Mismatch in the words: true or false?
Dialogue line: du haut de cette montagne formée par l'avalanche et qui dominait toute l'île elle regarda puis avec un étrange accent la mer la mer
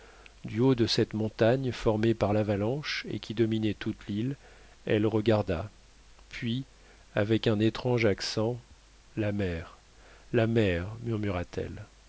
false